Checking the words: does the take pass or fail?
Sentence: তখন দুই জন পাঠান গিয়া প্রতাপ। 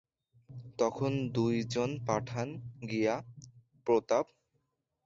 pass